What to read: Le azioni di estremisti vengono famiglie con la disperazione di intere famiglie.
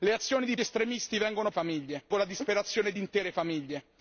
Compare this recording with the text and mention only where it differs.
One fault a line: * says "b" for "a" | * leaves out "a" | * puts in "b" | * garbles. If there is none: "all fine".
all fine